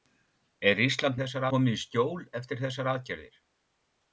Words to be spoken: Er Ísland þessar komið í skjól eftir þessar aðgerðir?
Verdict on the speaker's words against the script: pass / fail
pass